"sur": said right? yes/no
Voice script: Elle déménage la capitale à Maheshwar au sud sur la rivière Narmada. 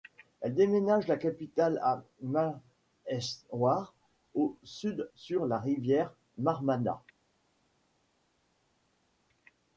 yes